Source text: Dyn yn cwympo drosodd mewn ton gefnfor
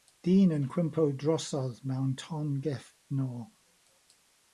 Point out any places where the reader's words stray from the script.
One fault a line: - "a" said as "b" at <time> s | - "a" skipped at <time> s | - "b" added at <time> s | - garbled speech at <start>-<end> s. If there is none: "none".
none